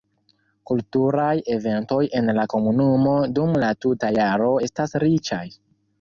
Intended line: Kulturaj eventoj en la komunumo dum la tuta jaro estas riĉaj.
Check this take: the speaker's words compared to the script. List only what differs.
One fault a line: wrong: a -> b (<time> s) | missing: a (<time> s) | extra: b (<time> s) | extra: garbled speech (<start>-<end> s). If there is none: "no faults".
no faults